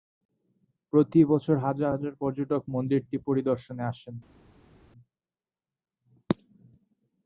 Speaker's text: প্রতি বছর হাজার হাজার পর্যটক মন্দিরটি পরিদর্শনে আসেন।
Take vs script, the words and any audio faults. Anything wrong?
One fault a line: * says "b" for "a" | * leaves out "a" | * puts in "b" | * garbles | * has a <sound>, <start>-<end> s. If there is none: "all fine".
all fine